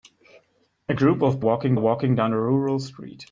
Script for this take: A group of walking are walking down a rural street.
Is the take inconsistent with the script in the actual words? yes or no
no